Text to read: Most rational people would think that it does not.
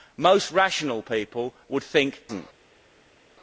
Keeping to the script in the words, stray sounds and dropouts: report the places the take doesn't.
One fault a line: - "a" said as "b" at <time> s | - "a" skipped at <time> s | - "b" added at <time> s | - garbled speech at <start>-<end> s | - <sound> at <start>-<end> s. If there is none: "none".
- "that it does" skipped at 2.2 s